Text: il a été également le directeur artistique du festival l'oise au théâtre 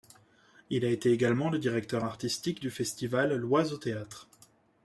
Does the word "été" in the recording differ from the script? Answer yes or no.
no